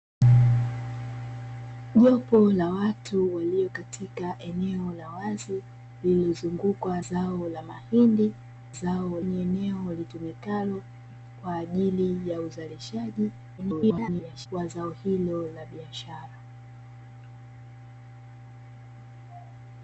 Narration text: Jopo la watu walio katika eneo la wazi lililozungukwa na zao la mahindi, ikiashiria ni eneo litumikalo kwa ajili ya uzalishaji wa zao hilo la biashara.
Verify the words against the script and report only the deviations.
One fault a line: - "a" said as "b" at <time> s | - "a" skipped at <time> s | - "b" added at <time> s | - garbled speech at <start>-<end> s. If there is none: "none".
- "na" skipped at 7.0 s
- "ikiashiria" said as "zao" at 8.7 s
- garbled speech at 13.6-14.5 s